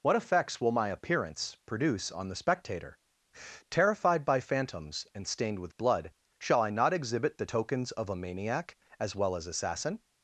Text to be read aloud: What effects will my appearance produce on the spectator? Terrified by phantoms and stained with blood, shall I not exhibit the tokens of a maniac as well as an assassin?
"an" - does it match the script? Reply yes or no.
no